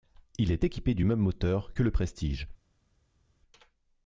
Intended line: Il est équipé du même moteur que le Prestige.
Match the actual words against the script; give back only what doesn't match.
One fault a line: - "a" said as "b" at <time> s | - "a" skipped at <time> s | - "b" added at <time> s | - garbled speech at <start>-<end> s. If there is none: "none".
none